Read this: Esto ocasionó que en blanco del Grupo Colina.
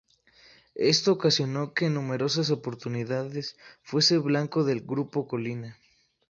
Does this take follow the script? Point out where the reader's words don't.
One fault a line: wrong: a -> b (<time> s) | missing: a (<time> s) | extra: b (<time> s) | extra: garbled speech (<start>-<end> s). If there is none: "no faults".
extra: numerosas oportunidades fuese (1.9 s)